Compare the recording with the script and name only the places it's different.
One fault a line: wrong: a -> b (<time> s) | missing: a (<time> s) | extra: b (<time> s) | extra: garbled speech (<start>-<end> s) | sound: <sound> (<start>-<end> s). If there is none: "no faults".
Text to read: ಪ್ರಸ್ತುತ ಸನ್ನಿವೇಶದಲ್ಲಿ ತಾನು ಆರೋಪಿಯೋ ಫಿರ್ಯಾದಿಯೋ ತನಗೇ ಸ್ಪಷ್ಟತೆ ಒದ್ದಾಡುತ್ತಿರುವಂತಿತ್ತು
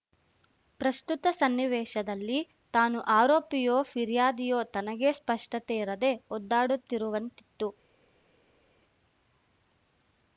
extra: ಇರದೆ (5.8 s)